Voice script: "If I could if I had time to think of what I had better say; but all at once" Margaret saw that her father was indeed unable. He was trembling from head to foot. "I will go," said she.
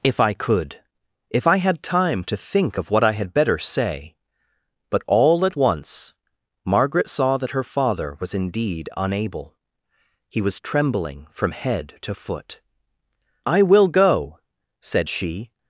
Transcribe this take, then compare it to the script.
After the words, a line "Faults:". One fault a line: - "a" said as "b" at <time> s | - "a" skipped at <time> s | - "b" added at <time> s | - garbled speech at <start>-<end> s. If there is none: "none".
"If I could if I had time to think of what I had better say; but all at once" Margaret saw that her father was indeed unable. He was trembling from head to foot. "I will go," said she.
Faults:
none